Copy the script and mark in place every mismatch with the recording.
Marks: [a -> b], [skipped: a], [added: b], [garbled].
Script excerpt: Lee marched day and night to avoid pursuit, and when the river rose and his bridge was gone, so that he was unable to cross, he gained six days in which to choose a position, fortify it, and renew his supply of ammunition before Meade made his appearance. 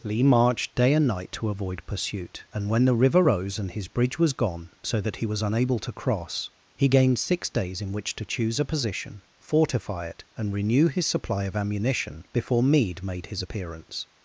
Lee marched day and night to avoid pursuit, and when the river rose and his bridge was gone, so that he was unable to cross, he gained six days in which to choose a position, fortify it, and renew his supply of ammunition before Meade made his appearance.